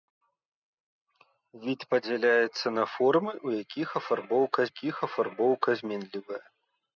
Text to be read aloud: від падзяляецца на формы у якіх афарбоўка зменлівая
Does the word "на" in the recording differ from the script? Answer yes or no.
no